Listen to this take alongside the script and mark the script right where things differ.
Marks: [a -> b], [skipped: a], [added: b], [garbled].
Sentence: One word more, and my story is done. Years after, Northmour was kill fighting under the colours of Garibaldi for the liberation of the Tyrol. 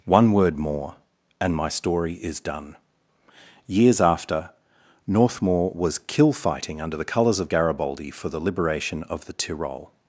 One word more, and my story is done. Years after, Northmour was kill fighting under the colours of Garibaldi for the liberation of the Tyrol.